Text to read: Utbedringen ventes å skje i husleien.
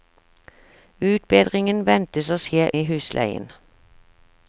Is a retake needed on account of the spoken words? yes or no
no